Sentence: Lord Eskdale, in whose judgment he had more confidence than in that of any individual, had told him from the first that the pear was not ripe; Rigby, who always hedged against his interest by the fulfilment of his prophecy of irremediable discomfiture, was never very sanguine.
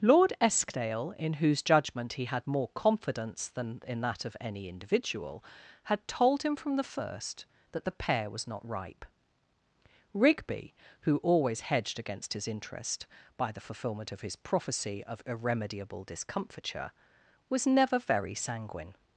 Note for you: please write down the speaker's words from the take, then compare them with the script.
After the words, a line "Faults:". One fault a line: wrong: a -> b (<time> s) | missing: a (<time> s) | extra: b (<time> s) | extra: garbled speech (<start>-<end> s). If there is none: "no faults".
Lord Eskdale, in whose judgment he had more confidence than in that of any individual, had told him from the first that the pear was not ripe; Rigby, who always hedged against his interest by the fulfilment of his prophecy of irremediable discomfiture, was never very sanguine.
Faults:
no faults